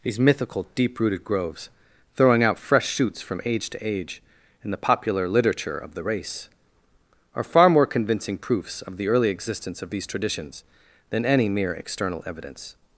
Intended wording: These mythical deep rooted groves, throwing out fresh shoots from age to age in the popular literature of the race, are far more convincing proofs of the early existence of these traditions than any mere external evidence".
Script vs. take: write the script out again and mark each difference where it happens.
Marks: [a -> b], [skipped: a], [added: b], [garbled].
These mythical deep rooted groves, throwing out fresh shoots from age to age in the popular literature of the race, are far more convincing proofs of the early existence of these traditions than any mere external evidence".